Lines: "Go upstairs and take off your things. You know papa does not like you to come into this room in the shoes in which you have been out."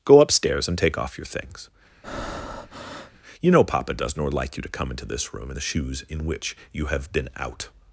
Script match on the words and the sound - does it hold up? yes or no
no